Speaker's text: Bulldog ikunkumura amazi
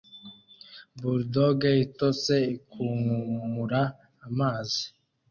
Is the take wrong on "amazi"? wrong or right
right